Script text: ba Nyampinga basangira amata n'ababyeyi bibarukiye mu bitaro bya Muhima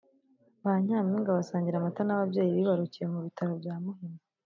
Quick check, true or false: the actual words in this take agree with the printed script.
true